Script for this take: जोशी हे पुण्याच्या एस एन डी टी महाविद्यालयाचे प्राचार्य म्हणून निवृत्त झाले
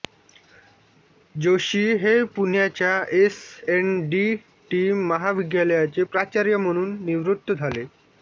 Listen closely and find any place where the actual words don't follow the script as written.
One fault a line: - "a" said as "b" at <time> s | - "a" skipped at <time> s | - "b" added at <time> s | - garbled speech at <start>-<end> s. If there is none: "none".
none